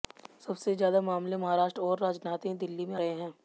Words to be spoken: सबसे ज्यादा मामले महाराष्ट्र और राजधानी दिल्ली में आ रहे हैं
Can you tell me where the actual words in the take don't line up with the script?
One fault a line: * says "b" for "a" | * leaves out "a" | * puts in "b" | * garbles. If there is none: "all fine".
* leaves out "आ"